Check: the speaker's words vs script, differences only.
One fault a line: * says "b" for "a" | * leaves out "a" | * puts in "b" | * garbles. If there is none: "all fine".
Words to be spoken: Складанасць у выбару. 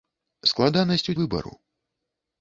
all fine